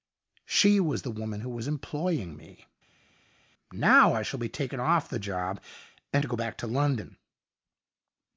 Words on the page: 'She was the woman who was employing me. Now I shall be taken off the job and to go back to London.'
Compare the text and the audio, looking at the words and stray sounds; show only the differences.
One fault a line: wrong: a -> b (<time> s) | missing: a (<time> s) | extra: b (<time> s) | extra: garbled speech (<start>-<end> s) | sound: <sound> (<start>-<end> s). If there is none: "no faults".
no faults